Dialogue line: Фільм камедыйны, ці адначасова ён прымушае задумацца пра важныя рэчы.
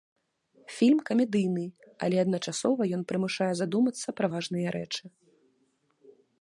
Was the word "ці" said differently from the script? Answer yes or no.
yes